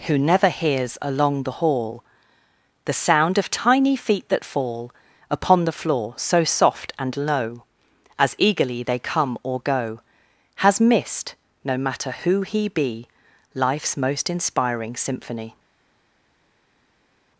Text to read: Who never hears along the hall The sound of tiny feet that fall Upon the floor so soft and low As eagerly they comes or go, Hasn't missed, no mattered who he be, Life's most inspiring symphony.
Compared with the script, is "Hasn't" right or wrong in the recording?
wrong